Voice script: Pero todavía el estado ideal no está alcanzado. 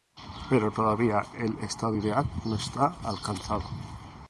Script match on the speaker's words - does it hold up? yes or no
yes